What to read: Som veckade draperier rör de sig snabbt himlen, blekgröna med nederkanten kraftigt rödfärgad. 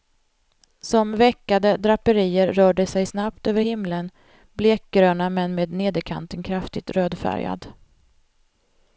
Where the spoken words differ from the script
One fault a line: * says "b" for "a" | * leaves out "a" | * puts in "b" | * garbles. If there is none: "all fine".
* puts in "över"
* puts in "men"